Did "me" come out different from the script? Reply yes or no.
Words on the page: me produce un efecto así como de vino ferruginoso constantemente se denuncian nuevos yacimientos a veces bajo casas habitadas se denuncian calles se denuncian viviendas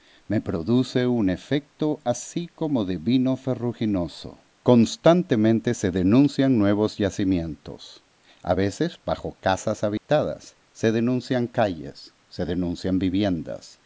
no